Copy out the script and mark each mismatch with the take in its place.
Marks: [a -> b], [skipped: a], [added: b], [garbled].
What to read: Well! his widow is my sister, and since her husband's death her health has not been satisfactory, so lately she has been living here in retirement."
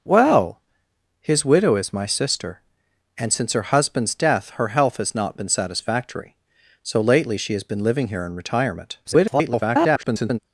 Well! his widow is my sister, and since her husband's death her health has not been satisfactory, so lately she has been living here in retirement." [garbled]